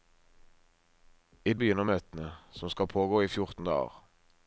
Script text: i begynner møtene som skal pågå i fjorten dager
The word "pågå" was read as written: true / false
true